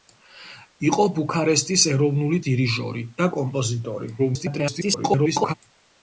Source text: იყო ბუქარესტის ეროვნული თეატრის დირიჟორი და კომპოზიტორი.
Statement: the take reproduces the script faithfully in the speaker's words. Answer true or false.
false